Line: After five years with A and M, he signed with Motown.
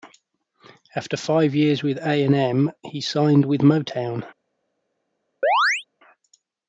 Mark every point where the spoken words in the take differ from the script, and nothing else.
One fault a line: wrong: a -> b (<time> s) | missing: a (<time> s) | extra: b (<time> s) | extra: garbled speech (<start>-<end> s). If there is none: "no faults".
no faults